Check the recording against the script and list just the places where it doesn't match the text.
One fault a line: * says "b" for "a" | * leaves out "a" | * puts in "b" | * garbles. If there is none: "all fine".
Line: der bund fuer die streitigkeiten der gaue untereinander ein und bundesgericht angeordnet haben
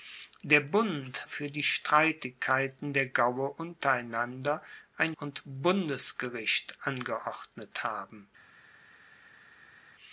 all fine